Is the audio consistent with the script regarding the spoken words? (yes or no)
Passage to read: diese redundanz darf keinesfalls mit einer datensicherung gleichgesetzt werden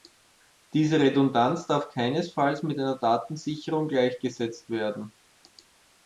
yes